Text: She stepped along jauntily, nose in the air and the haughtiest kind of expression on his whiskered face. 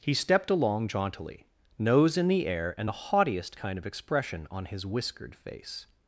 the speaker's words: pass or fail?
fail